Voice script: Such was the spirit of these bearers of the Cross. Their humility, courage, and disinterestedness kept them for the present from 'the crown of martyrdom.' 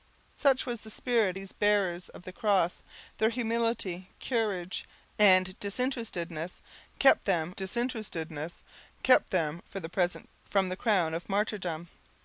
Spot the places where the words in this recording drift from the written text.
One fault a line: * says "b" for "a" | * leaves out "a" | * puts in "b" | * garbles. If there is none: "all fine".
* leaves out "of"
* puts in "disinterestedness kept them"